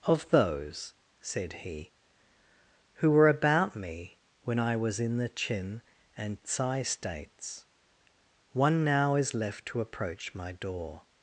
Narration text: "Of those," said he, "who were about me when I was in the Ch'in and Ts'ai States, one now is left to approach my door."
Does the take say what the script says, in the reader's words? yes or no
yes